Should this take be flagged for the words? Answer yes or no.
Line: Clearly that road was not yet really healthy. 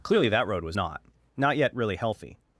yes